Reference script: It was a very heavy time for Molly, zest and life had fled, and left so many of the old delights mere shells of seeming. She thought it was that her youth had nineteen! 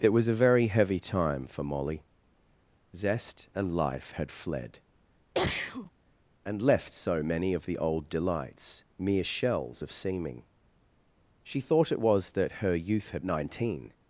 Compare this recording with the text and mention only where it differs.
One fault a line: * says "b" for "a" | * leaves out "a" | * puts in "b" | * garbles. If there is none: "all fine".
all fine